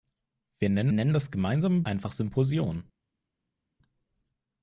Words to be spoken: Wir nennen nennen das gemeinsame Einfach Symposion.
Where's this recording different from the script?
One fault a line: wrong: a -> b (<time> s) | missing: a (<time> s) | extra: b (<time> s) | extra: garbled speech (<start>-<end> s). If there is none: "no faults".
no faults